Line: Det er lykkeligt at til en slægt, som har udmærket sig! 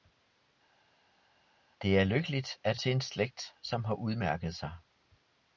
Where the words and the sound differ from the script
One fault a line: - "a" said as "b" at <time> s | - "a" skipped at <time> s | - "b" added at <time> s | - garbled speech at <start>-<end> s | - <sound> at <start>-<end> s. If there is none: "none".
none